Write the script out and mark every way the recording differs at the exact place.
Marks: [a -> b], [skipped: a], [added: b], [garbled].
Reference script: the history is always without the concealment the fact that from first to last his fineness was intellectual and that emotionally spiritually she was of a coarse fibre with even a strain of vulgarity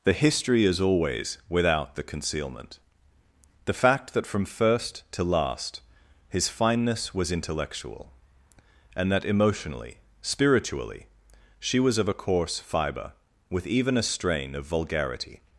the history is always without the concealment the fact that from first to last his fineness was intellectual and that emotionally spiritually she was of a coarse fibre with even a strain of vulgarity